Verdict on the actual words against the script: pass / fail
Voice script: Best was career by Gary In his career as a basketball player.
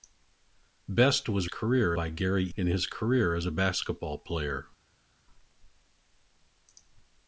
pass